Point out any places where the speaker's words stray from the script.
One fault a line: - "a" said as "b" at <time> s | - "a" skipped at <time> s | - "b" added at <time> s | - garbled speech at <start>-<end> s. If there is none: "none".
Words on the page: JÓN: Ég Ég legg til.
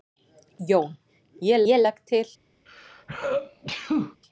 none